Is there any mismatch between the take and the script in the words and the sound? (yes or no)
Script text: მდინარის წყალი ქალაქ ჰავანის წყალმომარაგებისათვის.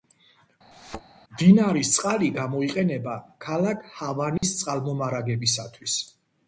yes